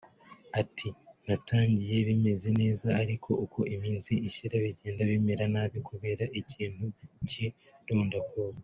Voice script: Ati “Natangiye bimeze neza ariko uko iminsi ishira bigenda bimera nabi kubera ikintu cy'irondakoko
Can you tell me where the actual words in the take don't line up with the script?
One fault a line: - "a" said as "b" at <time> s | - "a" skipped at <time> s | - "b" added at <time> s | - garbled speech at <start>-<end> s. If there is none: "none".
none